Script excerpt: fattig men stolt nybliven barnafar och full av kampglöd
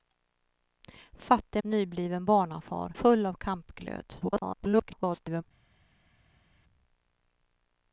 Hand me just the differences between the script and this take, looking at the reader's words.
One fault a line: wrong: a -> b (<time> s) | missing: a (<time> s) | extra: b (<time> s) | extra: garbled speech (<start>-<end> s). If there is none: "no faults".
missing: men stolt (1.6 s)
missing: och (2.9 s)
extra: garbled speech (4.2-5.4 s)